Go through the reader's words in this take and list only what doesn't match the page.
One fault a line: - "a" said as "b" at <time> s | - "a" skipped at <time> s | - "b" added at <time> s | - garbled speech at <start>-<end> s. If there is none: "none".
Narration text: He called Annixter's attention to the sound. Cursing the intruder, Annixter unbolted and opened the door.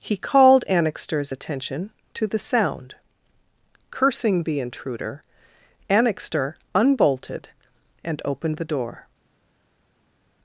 none